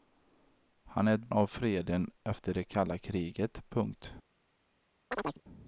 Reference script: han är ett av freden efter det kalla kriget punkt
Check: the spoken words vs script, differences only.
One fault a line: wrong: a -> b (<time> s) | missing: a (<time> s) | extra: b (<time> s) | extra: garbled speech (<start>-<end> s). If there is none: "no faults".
no faults